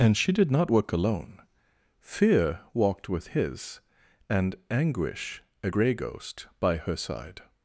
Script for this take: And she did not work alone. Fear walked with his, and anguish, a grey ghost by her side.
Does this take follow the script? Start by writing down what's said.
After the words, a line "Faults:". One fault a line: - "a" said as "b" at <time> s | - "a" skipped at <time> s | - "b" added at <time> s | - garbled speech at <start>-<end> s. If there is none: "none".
And she did not work alone. Fear walked with his, and anguish, a grey ghost by her side.
Faults:
none